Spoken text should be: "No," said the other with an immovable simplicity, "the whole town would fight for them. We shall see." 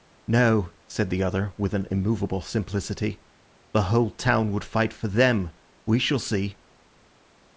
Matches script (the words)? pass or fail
pass